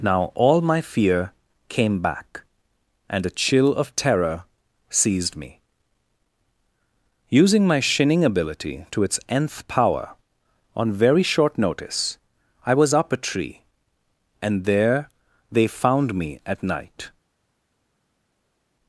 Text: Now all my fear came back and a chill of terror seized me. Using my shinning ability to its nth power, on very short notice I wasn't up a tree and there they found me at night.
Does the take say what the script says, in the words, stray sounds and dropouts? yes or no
no